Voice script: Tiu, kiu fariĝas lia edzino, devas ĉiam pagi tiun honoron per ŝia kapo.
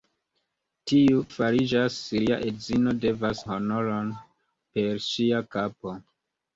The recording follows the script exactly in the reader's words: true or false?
false